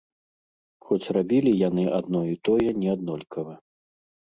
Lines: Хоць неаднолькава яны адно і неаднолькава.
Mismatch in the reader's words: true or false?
true